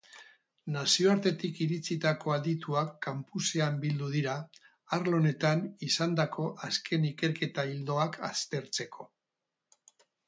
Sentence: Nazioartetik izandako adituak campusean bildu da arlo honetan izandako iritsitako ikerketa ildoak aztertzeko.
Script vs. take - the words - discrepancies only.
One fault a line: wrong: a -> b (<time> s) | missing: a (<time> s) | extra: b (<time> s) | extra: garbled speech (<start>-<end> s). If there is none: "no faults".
wrong: izandako -> iritsitako (1.6 s)
wrong: da -> dira (4.2 s)
wrong: iritsitako -> azken (6.7 s)